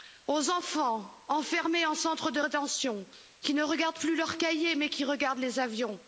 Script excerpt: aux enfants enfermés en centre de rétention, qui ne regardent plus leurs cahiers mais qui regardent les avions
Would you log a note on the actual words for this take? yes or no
no